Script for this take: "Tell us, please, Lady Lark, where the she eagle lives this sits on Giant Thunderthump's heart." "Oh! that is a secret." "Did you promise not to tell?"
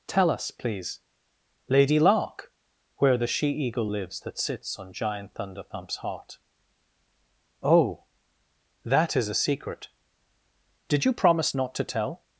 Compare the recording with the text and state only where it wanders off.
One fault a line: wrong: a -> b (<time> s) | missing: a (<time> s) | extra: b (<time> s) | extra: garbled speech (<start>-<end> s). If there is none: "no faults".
wrong: this -> that (4.2 s)